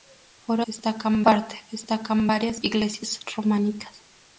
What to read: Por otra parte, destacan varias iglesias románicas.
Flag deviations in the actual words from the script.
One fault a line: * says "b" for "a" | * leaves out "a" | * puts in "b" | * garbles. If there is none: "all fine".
* says "destacan" for "otra"